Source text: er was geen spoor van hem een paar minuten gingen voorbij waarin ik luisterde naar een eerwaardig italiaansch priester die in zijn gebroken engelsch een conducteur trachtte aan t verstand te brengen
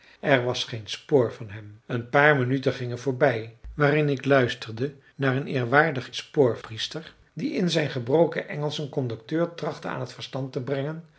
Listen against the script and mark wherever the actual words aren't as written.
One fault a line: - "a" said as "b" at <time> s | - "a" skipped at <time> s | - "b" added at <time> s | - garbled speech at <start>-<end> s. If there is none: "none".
- "italiaansch" said as "spoor" at 6.1 s